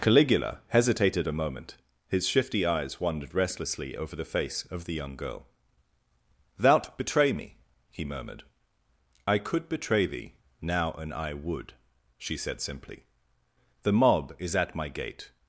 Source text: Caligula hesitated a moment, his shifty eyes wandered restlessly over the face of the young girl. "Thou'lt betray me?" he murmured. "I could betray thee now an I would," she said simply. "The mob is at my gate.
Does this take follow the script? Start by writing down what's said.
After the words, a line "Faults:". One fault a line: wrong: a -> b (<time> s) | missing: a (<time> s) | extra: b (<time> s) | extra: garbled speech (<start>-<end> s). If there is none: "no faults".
Caligula hesitated a moment, his shifty eyes wandered restlessly over the face of the young girl. "Thou'lt betray me?" he murmured. "I could betray thee now an I would," she said simply. "The mob is at my gate.
Faults:
no faults